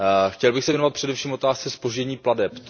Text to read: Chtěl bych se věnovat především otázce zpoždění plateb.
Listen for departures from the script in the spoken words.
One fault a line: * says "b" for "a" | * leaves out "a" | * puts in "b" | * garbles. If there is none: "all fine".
all fine